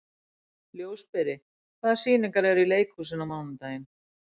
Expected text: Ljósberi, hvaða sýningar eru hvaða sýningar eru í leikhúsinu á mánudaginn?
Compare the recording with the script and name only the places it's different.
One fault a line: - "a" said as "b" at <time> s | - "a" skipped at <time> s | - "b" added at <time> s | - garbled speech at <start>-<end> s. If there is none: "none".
- "hvaða sýningar eru" skipped at 2.6 s